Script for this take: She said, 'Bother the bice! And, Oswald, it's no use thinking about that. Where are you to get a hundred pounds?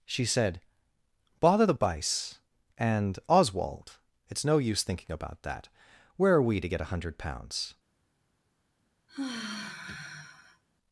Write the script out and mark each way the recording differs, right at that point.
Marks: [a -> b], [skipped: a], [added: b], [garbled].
She said, 'Bother the bice! And, Oswald, it's no use thinking about that. Where are [you -> we] to get a hundred pounds?